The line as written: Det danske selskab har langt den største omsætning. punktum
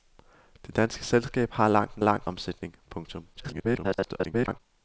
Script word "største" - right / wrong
wrong